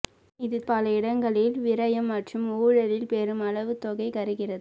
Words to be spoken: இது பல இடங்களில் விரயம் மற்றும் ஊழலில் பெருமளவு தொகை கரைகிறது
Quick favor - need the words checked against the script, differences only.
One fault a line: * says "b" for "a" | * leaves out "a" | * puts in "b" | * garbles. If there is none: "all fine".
all fine